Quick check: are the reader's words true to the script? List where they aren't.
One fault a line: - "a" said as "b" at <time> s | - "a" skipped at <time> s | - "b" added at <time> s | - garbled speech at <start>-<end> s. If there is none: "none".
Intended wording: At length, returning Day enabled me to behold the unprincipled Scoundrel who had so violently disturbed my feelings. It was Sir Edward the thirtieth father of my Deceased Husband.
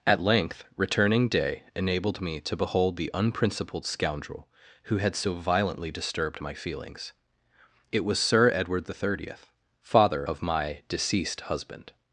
none